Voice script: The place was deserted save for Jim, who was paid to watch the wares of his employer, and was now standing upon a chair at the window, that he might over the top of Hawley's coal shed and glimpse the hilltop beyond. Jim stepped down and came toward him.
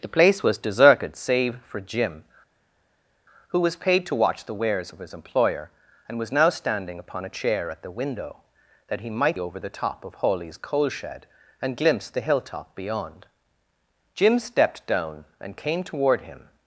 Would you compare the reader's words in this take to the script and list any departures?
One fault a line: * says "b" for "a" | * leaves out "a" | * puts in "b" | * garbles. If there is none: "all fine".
all fine